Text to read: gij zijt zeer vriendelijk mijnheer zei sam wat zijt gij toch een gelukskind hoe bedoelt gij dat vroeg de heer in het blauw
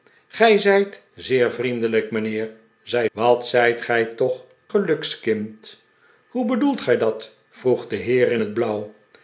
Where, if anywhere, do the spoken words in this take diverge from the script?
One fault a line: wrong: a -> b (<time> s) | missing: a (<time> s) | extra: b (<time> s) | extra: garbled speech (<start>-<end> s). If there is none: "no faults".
missing: sam (3.1 s)
missing: een (4.4 s)